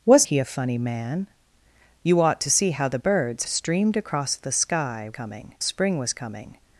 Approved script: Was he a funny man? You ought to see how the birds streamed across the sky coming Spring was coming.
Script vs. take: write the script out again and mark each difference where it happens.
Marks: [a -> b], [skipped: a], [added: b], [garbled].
Was he a funny man? You ought to see how the birds streamed across the sky coming Spring was coming.